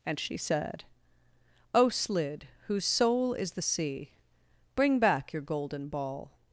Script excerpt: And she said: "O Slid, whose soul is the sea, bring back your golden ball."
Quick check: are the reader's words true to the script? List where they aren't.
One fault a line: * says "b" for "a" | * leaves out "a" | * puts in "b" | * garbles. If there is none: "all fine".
all fine